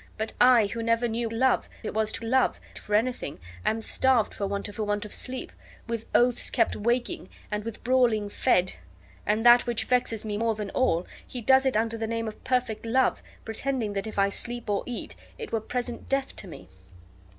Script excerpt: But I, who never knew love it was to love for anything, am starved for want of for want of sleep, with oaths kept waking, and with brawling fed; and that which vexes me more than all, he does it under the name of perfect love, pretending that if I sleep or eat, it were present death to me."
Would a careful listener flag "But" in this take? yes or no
no